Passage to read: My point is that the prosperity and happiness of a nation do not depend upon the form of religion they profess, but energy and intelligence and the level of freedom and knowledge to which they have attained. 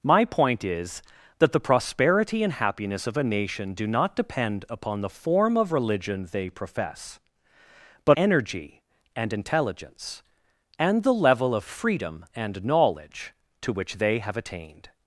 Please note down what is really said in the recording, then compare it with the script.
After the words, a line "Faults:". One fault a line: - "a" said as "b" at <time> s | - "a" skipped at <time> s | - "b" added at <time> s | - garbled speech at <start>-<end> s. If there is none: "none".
My point is that the prosperity and happiness of a nation do not depend upon the form of religion they profess, but energy and intelligence and the level of freedom and knowledge to which they have attained.
Faults:
none